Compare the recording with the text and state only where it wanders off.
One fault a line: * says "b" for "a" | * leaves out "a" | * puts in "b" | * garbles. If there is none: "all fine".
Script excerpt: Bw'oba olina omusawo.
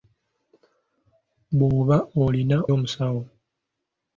all fine